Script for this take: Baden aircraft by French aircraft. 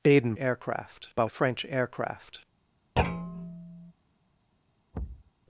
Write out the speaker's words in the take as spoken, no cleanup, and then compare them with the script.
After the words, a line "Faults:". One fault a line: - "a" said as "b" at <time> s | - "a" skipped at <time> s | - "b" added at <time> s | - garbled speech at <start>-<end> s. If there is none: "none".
Baden aircraft by French aircraft.
Faults:
none